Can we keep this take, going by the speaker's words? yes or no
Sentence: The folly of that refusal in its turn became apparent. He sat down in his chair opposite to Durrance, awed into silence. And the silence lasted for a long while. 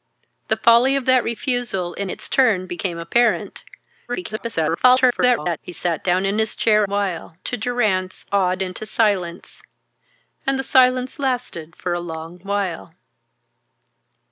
no